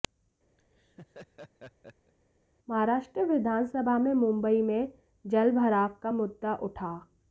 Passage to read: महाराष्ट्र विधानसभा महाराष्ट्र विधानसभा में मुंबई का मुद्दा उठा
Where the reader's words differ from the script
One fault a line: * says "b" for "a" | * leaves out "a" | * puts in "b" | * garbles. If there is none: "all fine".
* says "में मुंबई" for "महाराष्ट्र विधानसभा"
* says "जलभराव" for "मुंबई"